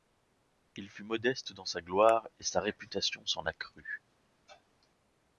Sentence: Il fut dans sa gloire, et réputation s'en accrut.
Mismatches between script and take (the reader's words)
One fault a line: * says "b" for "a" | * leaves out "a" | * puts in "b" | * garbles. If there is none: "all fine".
* puts in "modeste"
* puts in "sa"